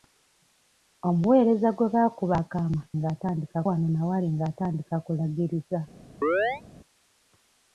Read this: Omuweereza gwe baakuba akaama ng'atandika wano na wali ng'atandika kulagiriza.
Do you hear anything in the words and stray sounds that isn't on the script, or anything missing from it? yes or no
yes